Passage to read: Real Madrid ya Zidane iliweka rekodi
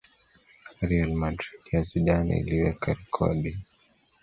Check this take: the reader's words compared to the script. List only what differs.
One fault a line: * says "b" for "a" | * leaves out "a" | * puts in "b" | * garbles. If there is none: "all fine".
all fine